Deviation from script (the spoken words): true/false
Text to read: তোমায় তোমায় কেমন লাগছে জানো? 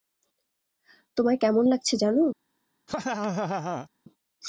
true